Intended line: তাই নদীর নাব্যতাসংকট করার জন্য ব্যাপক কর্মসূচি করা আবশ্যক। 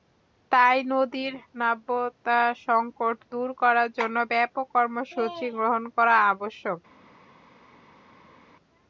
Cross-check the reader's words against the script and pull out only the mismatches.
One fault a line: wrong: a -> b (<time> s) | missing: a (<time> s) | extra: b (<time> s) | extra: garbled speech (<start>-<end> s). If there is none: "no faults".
extra: দূর (3.3 s)
extra: গ্রহণ (5.6 s)